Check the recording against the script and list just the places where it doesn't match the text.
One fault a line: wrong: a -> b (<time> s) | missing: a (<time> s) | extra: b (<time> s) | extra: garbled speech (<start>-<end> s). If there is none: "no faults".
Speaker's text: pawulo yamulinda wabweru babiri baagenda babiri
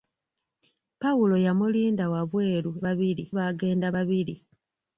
no faults